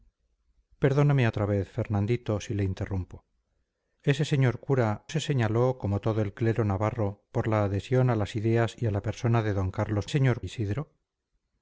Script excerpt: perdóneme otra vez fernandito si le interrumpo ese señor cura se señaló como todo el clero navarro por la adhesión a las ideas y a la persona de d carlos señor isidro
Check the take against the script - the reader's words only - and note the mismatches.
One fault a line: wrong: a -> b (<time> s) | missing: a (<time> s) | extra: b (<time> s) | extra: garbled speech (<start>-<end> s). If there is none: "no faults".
no faults